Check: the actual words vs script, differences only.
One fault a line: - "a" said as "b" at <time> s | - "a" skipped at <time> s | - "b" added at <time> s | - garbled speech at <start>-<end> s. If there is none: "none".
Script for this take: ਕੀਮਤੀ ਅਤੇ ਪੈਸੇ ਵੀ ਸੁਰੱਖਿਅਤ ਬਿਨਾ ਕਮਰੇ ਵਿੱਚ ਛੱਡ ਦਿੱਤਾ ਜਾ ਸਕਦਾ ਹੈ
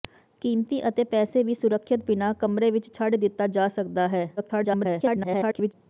- garbled speech at 4.4-5.7 s